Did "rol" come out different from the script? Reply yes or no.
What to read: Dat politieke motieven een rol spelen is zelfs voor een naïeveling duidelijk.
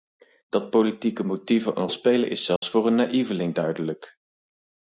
yes